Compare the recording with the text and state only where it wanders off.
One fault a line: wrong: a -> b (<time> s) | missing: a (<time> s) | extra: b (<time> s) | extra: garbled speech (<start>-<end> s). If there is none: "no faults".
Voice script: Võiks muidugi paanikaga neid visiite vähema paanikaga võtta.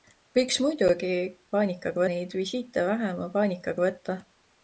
no faults